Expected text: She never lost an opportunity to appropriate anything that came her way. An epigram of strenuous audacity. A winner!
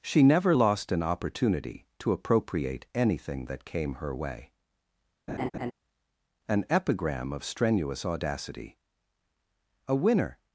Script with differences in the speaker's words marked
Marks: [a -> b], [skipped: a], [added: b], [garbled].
She never lost an opportunity to appropriate anything that came her way. An epigram of strenuous audacity. A winner!